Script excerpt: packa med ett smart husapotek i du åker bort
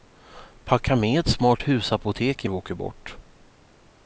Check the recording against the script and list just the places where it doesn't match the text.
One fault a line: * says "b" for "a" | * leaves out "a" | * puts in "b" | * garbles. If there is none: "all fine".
all fine